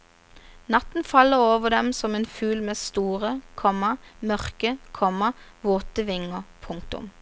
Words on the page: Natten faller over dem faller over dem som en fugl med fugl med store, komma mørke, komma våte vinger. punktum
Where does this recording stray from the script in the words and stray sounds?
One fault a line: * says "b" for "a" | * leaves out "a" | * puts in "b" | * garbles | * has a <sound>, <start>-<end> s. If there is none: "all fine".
* leaves out "faller over dem"
* leaves out "fugl med"